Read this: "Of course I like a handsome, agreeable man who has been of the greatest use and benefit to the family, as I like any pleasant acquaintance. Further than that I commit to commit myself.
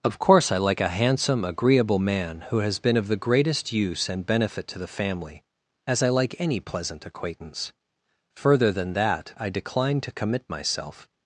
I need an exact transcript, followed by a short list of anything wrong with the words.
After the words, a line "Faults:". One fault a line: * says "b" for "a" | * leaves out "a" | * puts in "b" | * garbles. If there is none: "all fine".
"Of course I like a handsome, agreeable man who has been of the greatest use and benefit to the family, as I like any pleasant acquaintance. Further than that I decline to commit myself.
Faults:
* says "decline" for "commit"